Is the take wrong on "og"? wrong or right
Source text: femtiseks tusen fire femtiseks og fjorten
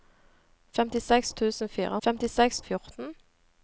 right